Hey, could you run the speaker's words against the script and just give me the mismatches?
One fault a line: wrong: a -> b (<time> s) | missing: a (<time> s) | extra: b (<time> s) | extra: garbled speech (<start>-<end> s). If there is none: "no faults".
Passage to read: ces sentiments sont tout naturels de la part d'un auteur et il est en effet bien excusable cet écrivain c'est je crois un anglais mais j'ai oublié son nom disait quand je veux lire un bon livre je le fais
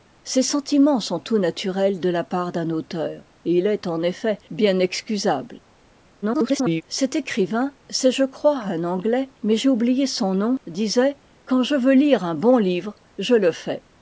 extra: garbled speech (6.2-6.8 s)